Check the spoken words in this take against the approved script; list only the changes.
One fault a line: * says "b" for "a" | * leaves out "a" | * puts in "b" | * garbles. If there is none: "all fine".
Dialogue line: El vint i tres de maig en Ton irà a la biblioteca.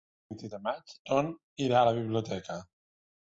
* leaves out "tres"
* leaves out "en"